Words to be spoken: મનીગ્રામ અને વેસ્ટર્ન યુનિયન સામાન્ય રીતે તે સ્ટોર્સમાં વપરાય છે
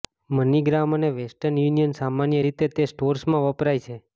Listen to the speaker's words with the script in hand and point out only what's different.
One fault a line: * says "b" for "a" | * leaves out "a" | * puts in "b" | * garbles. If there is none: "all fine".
all fine